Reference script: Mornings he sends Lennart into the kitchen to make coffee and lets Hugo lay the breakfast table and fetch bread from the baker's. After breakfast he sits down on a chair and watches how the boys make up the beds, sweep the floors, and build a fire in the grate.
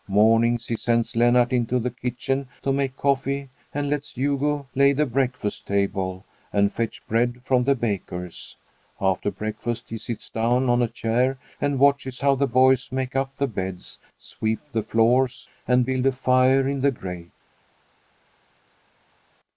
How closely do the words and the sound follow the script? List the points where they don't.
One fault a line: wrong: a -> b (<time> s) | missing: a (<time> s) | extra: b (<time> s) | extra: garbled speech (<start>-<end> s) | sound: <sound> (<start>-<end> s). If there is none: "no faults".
no faults